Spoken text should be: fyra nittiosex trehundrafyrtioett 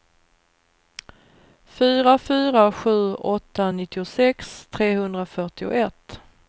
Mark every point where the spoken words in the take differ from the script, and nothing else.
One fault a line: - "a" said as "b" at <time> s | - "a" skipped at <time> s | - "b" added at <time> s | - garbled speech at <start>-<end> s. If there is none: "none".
- "fyra sju åtta" added at 2.2 s